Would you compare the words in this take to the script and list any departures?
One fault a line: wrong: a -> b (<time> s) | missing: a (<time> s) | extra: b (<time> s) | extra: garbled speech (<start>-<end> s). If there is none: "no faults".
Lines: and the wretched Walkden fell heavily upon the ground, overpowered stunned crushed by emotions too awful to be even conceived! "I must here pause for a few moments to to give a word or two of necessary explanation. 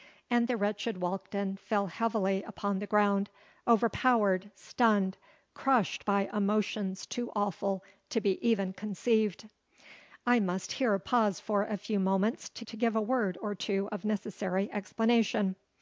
no faults